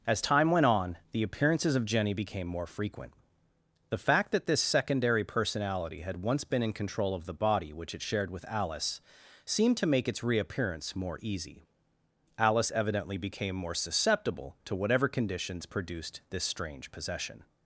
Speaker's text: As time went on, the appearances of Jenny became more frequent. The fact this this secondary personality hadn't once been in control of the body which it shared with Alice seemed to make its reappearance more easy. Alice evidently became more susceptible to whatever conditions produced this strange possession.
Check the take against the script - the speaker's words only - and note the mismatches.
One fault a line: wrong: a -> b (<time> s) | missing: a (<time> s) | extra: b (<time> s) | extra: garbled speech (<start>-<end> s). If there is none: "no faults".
wrong: this -> that (4.3 s)
wrong: hadn't -> had (6.0 s)